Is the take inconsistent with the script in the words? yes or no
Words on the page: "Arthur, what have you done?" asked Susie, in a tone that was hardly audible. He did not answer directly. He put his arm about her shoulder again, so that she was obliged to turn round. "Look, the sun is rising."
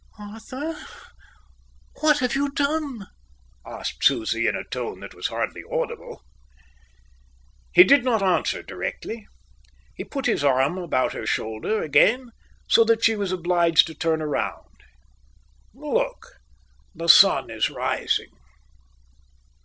no